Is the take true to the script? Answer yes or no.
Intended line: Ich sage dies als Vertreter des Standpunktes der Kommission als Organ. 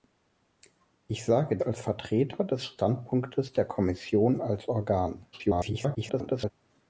no